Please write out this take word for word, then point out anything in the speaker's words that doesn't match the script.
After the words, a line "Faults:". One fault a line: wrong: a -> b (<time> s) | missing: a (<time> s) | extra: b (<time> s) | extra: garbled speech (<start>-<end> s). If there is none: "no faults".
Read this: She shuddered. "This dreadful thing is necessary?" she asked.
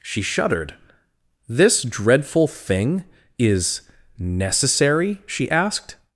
She shuddered. "This dreadful thing is necessary?" she asked.
Faults:
no faults